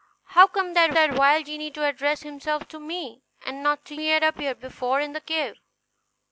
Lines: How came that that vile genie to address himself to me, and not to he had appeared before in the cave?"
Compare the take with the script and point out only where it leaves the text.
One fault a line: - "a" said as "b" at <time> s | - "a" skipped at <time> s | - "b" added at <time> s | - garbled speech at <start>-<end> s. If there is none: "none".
none